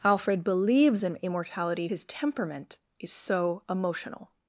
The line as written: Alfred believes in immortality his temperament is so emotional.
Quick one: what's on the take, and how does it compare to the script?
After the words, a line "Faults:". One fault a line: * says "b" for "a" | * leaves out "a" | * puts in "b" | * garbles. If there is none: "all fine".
Alfred believes in immortality his temperament is so emotional.
Faults:
all fine